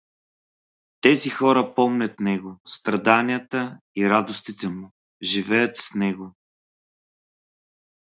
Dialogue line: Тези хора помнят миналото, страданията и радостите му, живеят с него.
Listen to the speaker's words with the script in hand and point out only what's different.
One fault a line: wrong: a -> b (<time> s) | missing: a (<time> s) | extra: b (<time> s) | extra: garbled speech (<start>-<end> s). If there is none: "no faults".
wrong: миналото -> него (2.2 s)